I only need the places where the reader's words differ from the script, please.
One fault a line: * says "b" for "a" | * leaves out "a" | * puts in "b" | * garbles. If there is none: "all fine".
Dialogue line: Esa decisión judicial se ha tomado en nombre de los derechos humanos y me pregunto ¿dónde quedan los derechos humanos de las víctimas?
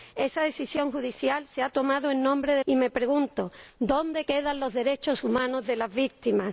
* leaves out "los derechos humanos"